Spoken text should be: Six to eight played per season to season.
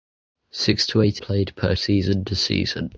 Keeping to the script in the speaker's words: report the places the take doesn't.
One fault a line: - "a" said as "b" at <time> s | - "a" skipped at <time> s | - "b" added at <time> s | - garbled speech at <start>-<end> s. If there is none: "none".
none